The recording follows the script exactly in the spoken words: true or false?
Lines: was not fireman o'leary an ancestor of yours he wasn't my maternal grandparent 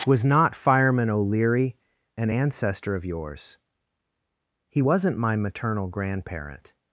true